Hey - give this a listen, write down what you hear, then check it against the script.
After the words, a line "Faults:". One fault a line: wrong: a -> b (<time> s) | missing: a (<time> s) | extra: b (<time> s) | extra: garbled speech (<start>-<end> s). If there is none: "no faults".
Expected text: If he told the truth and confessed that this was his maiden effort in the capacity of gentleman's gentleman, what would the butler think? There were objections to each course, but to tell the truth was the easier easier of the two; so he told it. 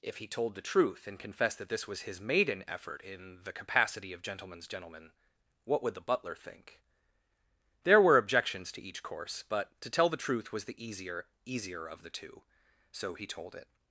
If he told the truth and confessed that this was his maiden effort in the capacity of gentleman's gentleman, what would the butler think? There were objections to each course, but to tell the truth was the easier easier of the two; so he told it.
Faults:
no faults